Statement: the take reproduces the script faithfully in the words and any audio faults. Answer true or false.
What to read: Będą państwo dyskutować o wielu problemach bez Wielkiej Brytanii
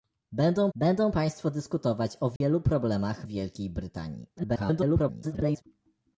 false